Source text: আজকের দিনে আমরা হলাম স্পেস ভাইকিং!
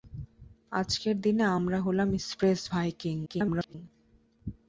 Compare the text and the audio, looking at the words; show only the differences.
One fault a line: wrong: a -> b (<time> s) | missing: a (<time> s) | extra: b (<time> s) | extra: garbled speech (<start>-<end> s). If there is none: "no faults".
extra: garbled speech (3.3-3.7 s)